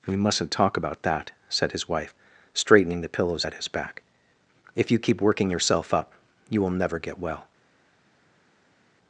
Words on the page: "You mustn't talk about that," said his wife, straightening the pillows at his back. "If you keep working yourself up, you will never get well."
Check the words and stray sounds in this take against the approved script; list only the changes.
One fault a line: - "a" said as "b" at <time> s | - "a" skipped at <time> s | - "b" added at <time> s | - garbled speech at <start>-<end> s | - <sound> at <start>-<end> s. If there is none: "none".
- "You" said as "We" at 0.1 s